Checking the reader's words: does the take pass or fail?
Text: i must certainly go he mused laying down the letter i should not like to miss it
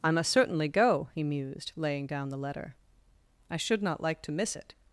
pass